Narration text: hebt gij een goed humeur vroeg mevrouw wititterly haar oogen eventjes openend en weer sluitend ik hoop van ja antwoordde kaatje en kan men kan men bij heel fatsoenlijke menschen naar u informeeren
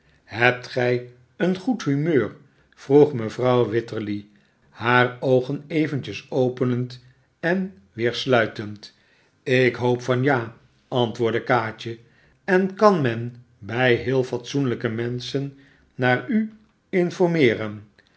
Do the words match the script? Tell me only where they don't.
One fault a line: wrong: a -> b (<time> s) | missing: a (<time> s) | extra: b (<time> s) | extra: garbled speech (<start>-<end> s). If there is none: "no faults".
missing: kan men (13.4 s)